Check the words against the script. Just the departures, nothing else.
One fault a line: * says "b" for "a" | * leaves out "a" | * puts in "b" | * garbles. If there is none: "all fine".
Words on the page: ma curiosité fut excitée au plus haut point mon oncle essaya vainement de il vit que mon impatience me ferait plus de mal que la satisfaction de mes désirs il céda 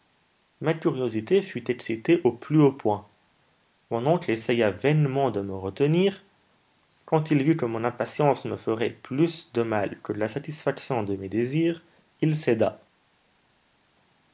* puts in "me retenir quand"